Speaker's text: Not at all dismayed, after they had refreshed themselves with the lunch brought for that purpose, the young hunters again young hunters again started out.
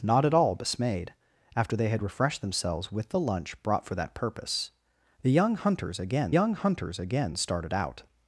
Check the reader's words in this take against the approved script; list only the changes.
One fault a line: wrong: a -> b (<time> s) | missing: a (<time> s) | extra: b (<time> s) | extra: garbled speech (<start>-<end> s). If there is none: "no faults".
no faults